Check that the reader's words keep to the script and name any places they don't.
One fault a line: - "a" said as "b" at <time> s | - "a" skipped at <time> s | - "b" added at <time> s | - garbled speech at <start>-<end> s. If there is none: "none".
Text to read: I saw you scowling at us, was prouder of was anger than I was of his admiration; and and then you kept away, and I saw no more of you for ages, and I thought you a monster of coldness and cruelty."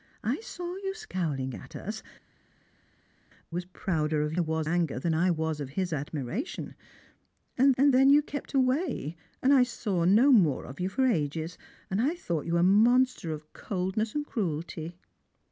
none